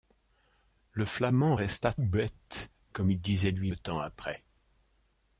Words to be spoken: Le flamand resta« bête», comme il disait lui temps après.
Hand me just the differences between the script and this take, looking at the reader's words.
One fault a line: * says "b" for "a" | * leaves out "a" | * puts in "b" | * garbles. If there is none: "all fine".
all fine